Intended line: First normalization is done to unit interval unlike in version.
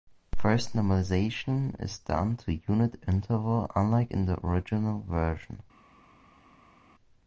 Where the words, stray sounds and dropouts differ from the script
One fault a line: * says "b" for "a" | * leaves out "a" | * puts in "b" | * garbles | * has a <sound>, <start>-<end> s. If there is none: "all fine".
* puts in "the original"